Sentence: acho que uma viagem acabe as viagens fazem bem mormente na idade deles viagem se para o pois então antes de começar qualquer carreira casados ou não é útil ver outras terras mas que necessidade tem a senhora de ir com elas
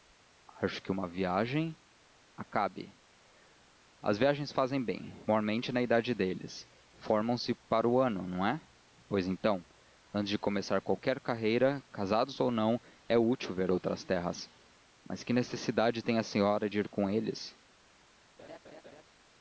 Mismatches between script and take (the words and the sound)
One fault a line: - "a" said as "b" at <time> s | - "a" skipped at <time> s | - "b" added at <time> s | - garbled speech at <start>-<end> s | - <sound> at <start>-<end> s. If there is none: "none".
- "viagem" said as "formam" at 7.0 s
- "ano não é" added at 8.0 s
- "elas" said as "eles" at 17.1 s
- laugh at 18.4-19.0 s